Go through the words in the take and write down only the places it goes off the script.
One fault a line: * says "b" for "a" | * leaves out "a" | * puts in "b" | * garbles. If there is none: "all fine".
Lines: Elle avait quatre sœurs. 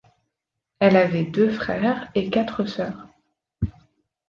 * puts in "deux frères et"